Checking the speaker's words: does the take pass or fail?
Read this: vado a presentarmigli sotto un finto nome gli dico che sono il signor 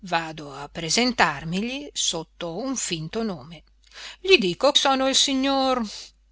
fail